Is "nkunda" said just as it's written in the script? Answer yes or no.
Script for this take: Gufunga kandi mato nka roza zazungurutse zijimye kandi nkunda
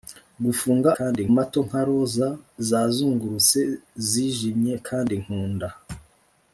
yes